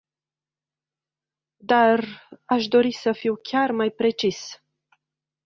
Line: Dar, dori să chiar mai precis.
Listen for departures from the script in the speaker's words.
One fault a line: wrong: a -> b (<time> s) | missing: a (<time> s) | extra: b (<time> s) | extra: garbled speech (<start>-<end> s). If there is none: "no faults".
extra: aș (2.4 s)
extra: fiu (3.1 s)